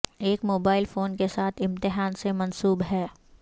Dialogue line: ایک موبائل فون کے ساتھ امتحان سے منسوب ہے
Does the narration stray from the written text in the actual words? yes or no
no